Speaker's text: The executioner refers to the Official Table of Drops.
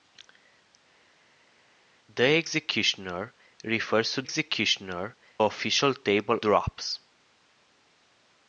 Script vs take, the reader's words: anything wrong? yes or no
yes